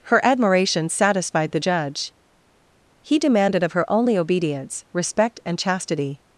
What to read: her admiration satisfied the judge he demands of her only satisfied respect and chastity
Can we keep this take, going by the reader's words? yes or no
no